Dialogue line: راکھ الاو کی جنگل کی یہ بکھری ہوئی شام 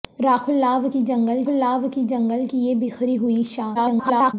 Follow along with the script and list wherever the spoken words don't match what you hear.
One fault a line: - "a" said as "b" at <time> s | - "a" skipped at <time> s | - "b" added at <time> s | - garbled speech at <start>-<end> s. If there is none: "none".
- "الاو کی جنگل" added at 1.5 s
- garbled speech at 3.7-4.3 s